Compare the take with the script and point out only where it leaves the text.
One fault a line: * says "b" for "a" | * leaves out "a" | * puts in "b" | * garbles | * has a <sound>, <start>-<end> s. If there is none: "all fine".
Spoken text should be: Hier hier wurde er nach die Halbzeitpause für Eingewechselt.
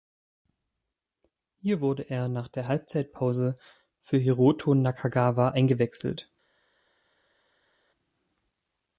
* leaves out "hier"
* says "der" for "die"
* puts in "Hiroto Nakagawa"